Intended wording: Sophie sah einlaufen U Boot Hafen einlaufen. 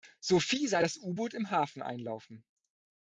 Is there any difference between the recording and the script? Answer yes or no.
yes